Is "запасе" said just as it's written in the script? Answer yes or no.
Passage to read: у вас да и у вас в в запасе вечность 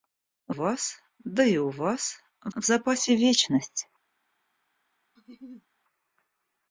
yes